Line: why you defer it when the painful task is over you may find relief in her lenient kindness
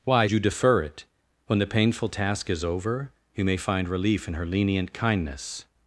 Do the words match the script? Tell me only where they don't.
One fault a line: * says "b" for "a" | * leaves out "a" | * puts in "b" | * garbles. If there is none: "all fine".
all fine